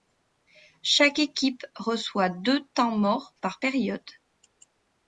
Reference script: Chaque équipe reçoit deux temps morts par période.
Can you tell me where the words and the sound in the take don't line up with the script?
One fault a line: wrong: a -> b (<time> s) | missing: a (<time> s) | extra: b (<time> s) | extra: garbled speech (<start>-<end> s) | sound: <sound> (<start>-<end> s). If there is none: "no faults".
no faults